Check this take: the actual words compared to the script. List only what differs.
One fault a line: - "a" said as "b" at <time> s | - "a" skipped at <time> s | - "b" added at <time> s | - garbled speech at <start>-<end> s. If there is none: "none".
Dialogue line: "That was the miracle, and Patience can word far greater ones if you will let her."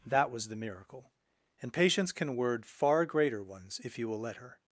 none